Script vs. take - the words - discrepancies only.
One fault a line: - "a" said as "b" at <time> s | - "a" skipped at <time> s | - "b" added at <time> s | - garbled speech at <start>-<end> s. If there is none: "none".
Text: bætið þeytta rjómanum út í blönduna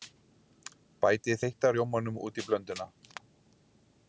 none